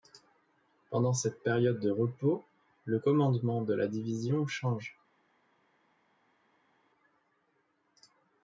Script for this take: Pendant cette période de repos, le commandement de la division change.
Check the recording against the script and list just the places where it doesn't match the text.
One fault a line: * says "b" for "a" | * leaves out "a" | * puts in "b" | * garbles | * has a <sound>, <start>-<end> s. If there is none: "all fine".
all fine